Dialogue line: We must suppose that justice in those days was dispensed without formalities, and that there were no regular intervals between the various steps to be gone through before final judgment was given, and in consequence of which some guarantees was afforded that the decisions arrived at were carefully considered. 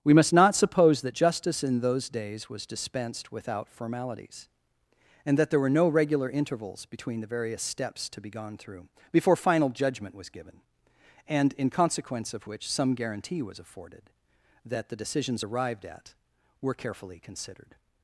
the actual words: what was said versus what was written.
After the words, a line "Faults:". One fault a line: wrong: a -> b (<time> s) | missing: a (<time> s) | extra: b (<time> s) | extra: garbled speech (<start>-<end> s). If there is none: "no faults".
We must not suppose that justice in those days was dispensed without formalities, and that there were no regular intervals between the various steps to be gone through before final judgment was given, and in consequence of which some guarantee was afforded that the decisions arrived at were carefully considered.
Faults:
extra: not (0.3 s)
wrong: guarantees -> guarantee (12.9 s)